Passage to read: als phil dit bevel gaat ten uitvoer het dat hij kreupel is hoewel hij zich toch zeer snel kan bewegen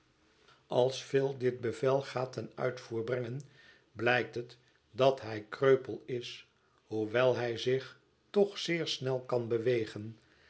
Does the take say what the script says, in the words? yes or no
no